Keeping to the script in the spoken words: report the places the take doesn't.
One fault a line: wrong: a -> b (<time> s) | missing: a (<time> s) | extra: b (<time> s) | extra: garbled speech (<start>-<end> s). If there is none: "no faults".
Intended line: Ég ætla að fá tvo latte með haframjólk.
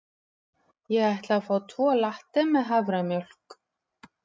no faults